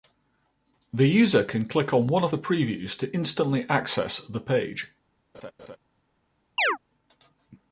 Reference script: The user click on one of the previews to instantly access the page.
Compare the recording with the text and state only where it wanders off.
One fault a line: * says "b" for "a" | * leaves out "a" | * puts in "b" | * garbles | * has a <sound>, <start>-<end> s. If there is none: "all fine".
* puts in "can"
* has a laugh, 5.3-5.8 s
* has a chirp, 6.6-6.8 s